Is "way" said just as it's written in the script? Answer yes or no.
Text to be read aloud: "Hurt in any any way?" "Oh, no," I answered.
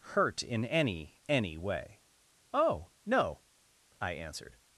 yes